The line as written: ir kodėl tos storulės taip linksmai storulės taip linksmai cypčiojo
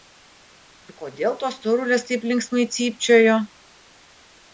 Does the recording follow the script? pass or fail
fail